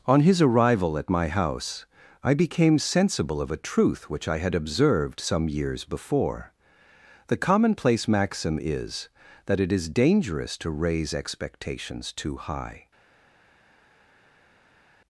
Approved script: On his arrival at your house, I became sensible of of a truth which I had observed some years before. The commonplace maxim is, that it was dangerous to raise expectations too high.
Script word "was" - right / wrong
wrong